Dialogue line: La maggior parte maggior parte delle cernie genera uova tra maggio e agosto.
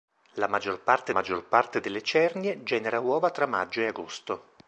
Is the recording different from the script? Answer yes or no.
no